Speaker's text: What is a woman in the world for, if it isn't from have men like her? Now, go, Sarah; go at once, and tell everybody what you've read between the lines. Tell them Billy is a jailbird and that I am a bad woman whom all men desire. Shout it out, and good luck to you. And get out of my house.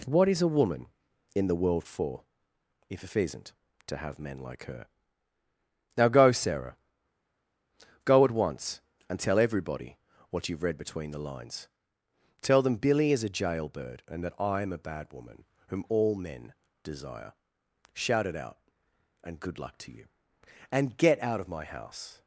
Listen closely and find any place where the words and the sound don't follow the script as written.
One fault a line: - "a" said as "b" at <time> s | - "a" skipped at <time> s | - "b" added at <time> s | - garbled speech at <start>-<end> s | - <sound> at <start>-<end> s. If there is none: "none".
- "from" said as "to" at 3.9 s